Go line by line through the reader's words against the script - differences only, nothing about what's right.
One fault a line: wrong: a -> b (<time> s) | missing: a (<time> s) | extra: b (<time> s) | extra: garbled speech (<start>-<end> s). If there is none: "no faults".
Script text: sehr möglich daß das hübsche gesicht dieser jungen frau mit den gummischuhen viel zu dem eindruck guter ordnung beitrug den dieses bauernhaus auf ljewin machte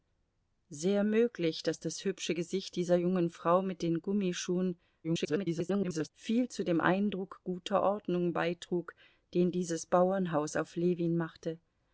extra: garbled speech (5.0-6.1 s)